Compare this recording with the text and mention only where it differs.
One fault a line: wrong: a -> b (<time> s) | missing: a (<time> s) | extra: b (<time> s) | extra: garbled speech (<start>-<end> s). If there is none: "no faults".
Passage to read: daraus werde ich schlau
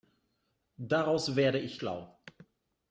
no faults